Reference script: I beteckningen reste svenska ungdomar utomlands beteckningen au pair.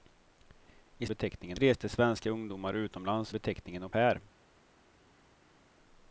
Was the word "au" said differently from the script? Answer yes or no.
no